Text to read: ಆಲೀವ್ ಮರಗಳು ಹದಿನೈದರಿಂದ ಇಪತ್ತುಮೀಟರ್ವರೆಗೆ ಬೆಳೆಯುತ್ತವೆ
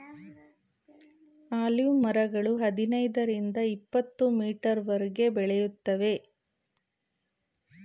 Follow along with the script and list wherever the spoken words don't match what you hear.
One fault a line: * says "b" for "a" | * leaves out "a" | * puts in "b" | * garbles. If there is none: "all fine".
all fine